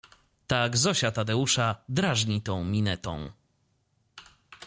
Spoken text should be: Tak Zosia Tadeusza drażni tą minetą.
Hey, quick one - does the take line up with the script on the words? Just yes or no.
yes